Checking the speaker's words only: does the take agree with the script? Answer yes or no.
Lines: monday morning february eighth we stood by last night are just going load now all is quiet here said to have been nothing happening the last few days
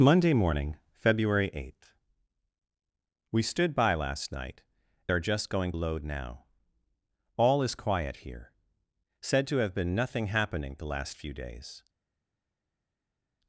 yes